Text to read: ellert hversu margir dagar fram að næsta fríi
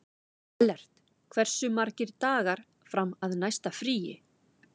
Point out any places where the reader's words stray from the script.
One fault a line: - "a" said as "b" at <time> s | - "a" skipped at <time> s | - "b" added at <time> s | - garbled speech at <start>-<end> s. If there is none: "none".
none